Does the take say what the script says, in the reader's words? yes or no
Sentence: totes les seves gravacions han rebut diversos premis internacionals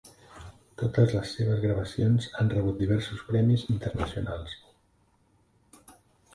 yes